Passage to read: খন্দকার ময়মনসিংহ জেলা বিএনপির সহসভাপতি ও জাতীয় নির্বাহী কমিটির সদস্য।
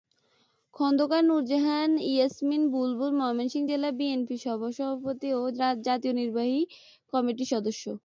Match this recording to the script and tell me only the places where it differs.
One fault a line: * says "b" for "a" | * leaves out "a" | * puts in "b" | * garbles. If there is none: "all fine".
* puts in "নূরজাহান ইয়াসমিন বুলবুল"